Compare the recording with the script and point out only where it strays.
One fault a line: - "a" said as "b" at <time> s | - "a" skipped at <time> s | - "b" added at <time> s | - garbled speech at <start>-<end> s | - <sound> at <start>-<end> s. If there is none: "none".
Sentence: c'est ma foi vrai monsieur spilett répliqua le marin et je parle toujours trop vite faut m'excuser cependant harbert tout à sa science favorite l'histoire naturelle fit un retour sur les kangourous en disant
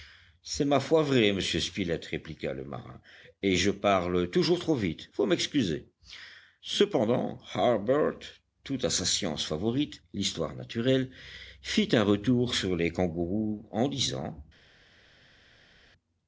none